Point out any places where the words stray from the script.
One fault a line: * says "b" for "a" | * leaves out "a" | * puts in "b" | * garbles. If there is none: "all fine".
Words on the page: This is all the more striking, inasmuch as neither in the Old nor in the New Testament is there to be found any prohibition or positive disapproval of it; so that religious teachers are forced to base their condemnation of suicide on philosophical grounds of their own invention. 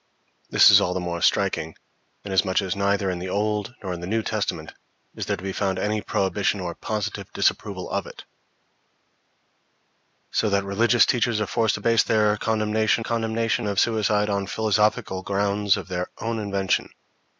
* puts in "condemnation"